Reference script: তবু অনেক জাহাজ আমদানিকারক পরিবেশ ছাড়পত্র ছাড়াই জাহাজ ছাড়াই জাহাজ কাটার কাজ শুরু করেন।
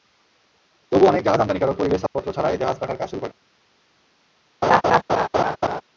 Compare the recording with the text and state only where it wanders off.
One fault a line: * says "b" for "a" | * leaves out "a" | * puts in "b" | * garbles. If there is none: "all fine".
* leaves out "ছাড়াই জাহাজ"